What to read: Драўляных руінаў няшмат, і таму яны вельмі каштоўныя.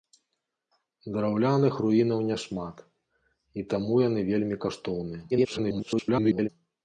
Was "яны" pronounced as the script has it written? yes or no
yes